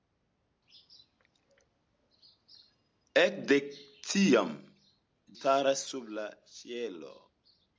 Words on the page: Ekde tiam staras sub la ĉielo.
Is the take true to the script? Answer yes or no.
yes